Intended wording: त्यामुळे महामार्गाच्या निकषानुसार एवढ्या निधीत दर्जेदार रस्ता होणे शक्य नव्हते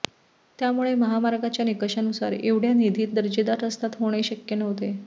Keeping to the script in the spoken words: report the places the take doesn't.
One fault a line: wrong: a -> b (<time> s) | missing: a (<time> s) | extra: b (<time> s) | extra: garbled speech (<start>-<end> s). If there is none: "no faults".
no faults